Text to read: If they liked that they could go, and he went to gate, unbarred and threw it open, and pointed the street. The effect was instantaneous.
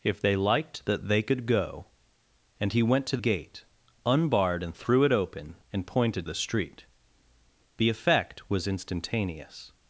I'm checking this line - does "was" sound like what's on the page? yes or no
yes